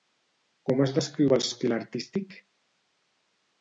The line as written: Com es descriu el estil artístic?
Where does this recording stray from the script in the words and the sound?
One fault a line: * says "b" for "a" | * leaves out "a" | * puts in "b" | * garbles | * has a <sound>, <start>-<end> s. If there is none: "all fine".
all fine